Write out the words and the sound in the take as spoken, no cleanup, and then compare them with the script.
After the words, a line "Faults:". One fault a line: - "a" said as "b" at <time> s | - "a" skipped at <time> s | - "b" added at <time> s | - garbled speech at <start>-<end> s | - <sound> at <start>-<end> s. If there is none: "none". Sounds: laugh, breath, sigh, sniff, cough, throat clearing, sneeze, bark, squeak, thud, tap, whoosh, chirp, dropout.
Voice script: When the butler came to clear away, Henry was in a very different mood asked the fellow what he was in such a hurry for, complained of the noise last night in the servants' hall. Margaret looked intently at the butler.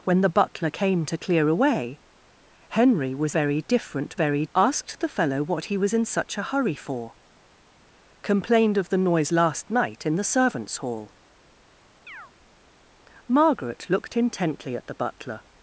When the butler came to clear away, Henry was very different very asked the fellow what he was in such a hurry for, complained of the noise last night in the servants' hall. Margaret looked intently at the butler.
Faults:
- "in a" skipped at 3.3 s
- "mood" said as "very" at 4.2 s
- chirp at 12.1-12.3 s